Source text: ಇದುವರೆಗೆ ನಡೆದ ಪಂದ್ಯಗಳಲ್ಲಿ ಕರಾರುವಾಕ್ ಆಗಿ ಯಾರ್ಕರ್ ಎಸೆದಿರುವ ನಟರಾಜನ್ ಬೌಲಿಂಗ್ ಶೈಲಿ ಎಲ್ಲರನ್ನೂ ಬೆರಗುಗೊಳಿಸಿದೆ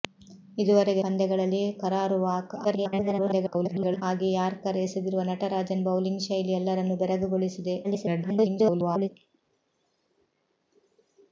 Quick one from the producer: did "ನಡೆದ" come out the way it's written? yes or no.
no